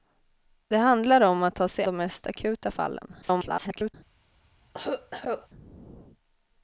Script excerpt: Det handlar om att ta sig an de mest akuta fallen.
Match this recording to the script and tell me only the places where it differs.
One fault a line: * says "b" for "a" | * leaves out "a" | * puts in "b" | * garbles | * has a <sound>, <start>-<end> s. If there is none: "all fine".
* leaves out "an"
* garbles
* has a cough, 4.6-5.5 s